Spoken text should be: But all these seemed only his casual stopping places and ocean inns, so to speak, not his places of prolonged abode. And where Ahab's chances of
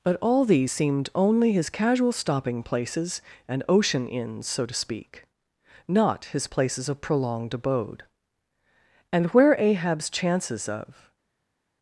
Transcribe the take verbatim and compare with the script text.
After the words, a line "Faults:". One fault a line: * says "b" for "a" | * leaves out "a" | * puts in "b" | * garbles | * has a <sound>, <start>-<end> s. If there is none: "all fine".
But all these seemed only his casual stopping places and ocean inns, so to speak, not his places of prolonged abode. And where Ahab's chances of
Faults:
all fine